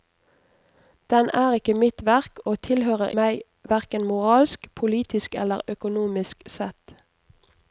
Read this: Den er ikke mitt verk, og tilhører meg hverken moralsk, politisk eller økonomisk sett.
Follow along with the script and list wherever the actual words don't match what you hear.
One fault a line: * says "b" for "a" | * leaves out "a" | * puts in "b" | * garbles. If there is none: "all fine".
all fine